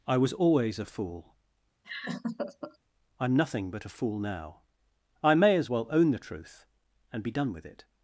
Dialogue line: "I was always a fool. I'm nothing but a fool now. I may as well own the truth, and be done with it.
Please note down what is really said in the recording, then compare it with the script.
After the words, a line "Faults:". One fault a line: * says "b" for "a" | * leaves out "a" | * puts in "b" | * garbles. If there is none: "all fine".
"I was always a fool. I'm nothing but a fool now. I may as well own the truth, and be done with it.
Faults:
all fine